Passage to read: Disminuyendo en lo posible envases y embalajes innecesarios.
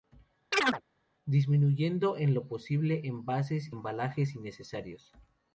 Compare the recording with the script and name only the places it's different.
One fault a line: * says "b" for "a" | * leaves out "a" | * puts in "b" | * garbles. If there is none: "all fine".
* leaves out "y"